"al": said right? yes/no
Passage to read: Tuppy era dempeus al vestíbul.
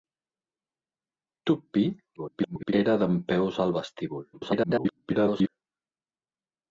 yes